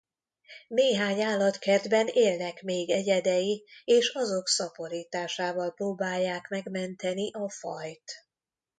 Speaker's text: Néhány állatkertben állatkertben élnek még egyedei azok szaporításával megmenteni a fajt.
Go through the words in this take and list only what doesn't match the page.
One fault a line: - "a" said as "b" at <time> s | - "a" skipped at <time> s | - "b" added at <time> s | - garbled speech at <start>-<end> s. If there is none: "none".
- "állatkertben" skipped at 2.1 s
- "és" added at 3.8 s
- "próbálják" added at 5.7 s